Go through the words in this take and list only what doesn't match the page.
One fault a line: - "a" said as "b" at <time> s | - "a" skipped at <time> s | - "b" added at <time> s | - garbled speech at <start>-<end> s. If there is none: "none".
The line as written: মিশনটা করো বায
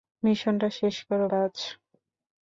- "শেষ" added at 0.8 s